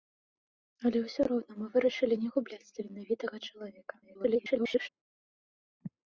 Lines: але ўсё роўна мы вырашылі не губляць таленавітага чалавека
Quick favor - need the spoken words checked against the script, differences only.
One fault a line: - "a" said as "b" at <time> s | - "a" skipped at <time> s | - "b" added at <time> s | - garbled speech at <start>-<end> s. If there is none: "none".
- garbled speech at 4.0-4.9 s